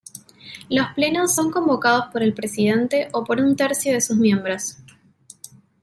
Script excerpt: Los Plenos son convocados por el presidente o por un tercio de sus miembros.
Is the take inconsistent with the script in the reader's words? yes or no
no